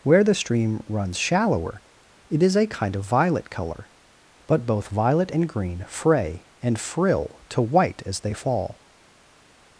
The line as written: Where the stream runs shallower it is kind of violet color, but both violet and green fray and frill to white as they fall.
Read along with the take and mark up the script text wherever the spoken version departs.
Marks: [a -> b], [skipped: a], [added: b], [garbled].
Where the stream runs shallower it is [added: a] kind of violet color, but both violet and green fray and frill to white as they fall.